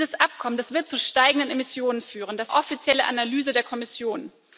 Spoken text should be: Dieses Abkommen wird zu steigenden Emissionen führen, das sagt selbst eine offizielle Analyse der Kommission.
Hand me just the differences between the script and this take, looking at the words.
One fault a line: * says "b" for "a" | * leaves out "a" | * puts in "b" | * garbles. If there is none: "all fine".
* leaves out "sagt selbst eine"